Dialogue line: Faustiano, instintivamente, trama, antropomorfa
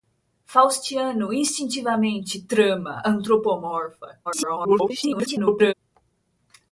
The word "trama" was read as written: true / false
true